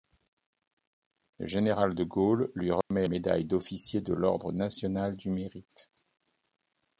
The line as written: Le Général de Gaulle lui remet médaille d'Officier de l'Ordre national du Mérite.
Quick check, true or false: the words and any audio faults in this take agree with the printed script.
false